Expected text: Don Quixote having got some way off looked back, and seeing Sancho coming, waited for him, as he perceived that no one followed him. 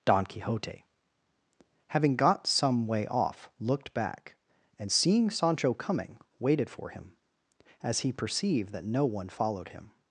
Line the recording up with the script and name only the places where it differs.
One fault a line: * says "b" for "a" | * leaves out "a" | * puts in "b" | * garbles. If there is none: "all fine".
all fine